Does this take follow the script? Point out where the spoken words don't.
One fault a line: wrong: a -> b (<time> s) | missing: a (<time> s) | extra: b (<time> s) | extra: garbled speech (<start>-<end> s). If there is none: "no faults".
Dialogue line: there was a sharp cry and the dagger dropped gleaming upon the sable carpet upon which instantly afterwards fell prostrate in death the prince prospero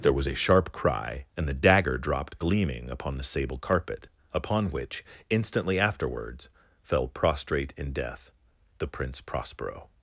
no faults